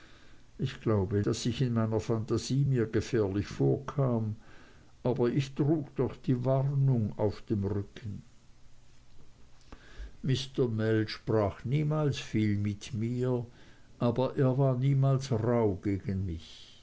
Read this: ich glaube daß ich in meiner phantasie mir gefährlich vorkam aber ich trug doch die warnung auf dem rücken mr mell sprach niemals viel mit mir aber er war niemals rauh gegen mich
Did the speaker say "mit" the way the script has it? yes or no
yes